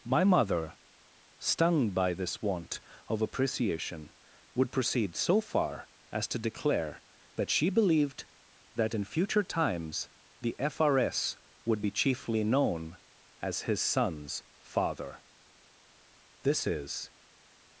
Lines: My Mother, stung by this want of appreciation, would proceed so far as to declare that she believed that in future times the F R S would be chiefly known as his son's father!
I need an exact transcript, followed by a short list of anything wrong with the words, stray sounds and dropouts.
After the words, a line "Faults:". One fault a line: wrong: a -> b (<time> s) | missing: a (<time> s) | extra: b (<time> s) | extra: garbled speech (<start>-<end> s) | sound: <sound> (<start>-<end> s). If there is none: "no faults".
My Mother, stung by this want of appreciation, would proceed so far as to declare that she believed that in future times the F R S would be chiefly known as his son's father! (This is
Faults:
extra: This is (16.4 s)